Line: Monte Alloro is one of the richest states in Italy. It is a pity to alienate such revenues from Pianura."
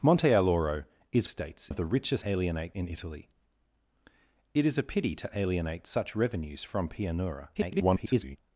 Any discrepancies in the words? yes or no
yes